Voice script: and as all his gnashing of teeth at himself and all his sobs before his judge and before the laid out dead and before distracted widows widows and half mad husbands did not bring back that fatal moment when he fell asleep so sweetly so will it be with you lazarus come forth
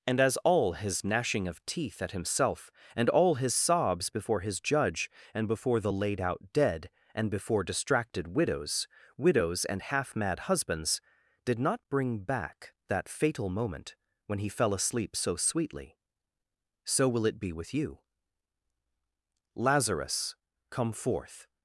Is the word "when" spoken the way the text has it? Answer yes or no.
yes